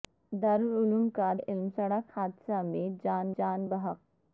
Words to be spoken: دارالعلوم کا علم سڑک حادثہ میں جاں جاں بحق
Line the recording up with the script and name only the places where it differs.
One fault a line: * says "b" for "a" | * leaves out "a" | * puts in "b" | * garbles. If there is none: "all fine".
all fine